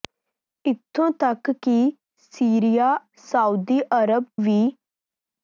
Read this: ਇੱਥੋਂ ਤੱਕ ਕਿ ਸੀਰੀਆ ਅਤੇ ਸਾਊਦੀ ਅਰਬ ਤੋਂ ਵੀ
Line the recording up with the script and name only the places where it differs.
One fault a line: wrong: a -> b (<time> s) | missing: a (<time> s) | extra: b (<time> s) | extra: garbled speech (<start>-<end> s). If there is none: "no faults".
missing: ਅਤੇ (3.0 s)
missing: ਤੋਂ (4.2 s)